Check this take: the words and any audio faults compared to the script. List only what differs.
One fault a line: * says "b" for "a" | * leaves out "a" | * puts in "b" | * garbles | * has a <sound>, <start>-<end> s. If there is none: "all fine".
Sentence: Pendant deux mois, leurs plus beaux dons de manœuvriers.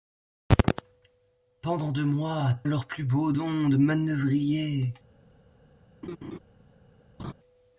* has a laugh, 6.0-6.4 s
* has a laugh, 7.2-7.3 s